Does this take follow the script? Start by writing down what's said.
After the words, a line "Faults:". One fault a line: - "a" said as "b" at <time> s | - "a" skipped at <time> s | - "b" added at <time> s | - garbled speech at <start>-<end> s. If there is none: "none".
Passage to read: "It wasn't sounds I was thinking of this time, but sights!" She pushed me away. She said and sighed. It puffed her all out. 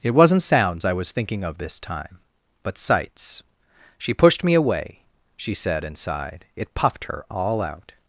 "It wasn't sounds I was thinking of this time, but sights!" She pushed me away. She said and sighed. It puffed her all out.
Faults:
none